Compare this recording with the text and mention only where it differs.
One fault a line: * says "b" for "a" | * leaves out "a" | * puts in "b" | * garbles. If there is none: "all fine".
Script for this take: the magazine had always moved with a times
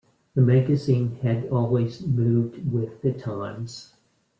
* says "the" for "a"